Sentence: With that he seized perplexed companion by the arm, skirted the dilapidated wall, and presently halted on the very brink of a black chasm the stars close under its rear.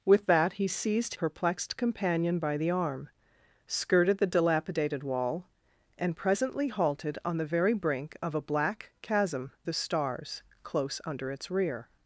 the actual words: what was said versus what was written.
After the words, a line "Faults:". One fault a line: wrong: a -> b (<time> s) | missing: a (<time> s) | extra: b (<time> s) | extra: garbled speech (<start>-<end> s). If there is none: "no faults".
With that he seized perplexed companion by the arm, skirted the dilapidated wall, and presently halted on the very brink of a black chasm the stars close under its rear.
Faults:
no faults